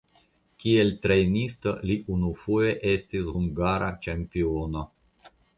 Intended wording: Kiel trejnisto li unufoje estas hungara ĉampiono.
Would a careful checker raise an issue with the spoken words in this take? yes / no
yes